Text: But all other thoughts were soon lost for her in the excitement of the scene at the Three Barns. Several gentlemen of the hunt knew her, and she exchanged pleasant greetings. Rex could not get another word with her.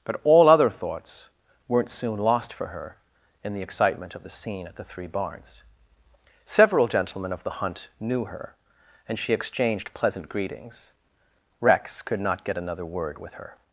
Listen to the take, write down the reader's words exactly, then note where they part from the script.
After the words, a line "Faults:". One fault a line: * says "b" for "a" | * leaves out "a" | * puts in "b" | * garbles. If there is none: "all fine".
But all other thoughts weren't soon lost for her in the excitement of the scene at the Three Barns. Several gentlemen of the hunt knew her, and she exchanged pleasant greetings. Rex could not get another word with her.
Faults:
* says "weren't" for "were"